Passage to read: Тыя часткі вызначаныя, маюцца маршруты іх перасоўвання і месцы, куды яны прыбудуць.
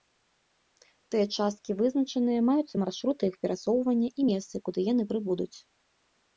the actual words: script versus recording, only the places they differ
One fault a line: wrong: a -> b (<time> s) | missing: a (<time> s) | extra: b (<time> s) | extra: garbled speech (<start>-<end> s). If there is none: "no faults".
no faults